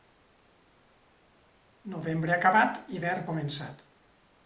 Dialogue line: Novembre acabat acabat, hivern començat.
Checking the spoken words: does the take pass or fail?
fail